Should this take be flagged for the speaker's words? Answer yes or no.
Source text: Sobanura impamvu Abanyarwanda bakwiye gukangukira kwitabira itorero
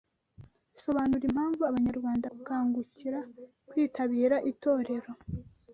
yes